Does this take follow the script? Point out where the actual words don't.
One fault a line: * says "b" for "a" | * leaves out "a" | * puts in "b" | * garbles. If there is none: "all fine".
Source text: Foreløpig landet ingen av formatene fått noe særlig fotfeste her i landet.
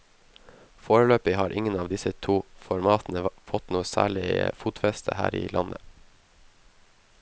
* says "har" for "landet"
* puts in "disse to"